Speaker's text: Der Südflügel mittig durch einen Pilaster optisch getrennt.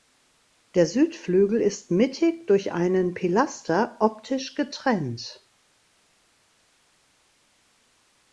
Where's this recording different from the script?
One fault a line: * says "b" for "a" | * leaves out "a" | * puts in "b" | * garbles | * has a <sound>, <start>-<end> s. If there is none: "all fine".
* puts in "ist"